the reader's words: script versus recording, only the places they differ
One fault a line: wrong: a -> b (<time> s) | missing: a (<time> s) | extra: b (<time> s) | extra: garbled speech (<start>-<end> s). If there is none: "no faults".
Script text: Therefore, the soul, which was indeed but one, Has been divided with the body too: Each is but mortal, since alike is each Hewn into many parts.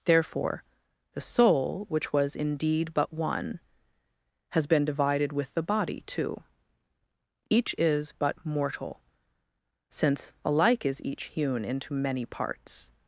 no faults